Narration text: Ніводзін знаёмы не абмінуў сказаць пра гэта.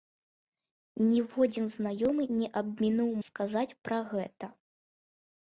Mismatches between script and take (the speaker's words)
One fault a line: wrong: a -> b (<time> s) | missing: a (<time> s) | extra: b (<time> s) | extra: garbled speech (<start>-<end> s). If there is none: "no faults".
no faults